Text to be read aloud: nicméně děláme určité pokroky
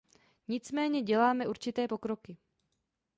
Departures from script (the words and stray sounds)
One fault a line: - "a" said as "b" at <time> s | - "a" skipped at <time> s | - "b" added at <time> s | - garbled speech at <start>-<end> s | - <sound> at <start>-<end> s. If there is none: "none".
none